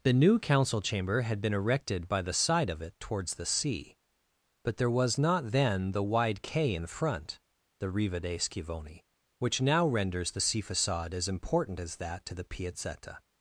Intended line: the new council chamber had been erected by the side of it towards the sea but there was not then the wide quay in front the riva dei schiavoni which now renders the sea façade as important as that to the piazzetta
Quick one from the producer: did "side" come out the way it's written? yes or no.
yes